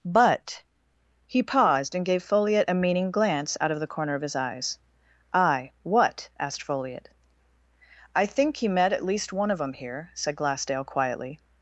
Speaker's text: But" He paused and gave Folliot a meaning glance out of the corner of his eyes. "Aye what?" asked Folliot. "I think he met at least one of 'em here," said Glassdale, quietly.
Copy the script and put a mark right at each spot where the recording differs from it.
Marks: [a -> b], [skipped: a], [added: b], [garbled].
But" He paused and gave Folliot a meaning glance out of the corner of his eyes. "Aye what?" asked Folliot. "I think he met at least one of 'em here," said Glassdale, quietly.